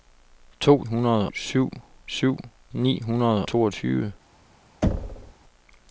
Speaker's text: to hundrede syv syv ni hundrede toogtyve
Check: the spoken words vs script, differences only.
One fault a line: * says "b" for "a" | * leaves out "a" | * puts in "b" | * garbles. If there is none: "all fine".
all fine